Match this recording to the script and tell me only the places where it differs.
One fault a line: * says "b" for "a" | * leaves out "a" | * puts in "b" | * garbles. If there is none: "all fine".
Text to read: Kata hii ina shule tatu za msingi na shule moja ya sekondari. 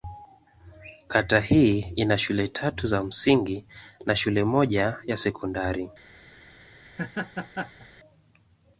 all fine